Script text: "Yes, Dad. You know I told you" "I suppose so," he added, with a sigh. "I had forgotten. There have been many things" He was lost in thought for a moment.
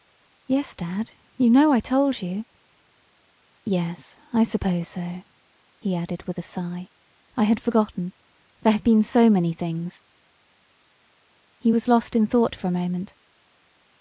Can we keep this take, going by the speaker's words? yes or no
no